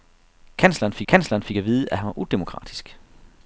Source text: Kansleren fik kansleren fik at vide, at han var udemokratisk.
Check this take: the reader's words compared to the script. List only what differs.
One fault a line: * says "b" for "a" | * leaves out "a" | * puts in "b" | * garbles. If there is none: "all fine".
all fine